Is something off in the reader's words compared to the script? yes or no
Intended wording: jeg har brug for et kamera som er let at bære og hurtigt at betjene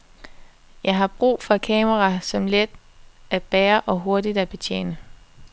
no